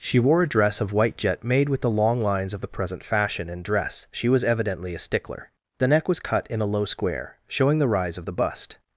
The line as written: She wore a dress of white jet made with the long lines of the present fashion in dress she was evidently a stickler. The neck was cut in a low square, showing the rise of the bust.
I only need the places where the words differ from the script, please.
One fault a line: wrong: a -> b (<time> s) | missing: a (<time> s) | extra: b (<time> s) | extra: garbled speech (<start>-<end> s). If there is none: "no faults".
no faults